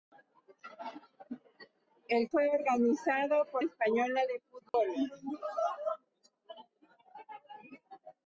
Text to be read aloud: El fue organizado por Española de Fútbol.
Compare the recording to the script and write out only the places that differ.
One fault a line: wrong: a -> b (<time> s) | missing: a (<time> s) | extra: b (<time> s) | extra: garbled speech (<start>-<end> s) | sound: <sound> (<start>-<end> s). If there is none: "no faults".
sound: dropout (4.7-4.7 s)